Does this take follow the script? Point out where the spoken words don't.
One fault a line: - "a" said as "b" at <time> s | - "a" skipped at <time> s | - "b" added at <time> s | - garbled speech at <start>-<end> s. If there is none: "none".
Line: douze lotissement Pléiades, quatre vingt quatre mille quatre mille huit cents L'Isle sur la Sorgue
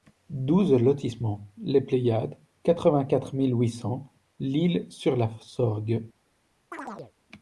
- "les" added at 1.6 s
- "quatre mille" skipped at 3.5 s